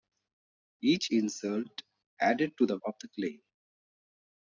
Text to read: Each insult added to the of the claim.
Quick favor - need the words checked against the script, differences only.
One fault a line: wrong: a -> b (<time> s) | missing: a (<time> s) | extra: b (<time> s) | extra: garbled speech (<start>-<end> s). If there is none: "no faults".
no faults